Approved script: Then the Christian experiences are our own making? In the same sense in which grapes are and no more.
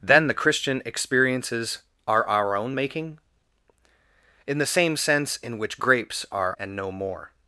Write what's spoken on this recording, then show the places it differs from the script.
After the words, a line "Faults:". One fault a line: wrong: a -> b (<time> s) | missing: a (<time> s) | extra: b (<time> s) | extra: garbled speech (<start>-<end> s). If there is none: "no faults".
Then the Christian experiences are our own making? In the same sense in which grapes are and no more.
Faults:
no faults